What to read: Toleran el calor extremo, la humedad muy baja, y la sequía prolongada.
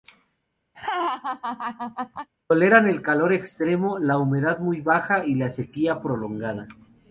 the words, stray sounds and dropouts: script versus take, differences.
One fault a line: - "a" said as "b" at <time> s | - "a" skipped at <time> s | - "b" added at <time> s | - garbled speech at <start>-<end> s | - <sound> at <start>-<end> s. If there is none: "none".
- laugh at 0.7-2.3 s